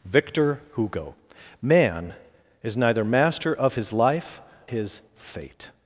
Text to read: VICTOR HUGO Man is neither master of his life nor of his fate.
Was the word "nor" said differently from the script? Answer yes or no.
yes